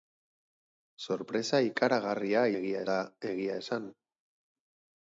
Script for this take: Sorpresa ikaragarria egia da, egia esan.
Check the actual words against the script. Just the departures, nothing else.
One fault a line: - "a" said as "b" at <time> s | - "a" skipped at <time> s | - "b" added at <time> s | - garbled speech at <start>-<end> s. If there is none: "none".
none